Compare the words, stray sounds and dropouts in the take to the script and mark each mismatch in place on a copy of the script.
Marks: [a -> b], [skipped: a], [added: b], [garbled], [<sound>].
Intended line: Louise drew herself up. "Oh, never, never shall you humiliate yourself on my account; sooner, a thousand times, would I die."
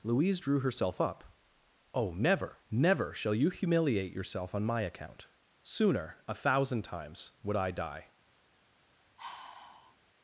Louise drew herself up. "Oh, never, never shall you humiliate yourself on my account; sooner, a thousand times, would I die." [sigh]